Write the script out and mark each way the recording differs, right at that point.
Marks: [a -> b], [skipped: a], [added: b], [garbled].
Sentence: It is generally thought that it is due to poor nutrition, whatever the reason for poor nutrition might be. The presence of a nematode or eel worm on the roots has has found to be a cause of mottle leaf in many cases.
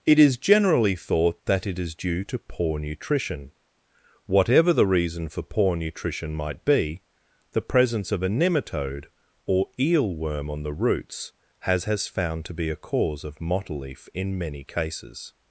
It is generally thought that it is due to poor nutrition, whatever the reason for poor nutrition might be. The presence of a nematode or eel worm on the roots has has found to be a cause of mottle leaf in many cases.